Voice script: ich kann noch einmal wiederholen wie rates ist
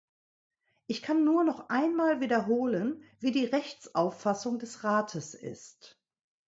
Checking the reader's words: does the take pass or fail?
fail